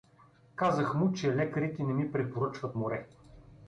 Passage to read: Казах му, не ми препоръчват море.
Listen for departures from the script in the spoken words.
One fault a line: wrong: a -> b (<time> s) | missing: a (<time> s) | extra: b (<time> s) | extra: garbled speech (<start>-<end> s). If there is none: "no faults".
extra: че лекарите (1.1 s)